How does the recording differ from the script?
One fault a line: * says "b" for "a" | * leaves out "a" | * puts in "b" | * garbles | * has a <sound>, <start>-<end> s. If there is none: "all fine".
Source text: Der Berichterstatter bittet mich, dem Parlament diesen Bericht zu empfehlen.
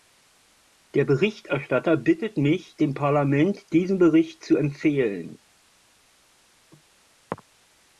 all fine